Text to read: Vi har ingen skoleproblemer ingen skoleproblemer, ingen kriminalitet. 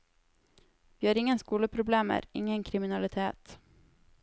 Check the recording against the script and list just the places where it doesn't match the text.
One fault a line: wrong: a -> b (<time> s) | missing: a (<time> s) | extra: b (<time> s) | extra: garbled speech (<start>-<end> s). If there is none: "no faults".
missing: skoleproblemer ingen (2.6 s)